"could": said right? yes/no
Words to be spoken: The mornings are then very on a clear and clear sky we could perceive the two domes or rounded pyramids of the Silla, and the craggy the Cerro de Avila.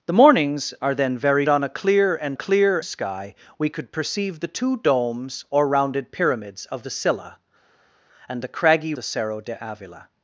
yes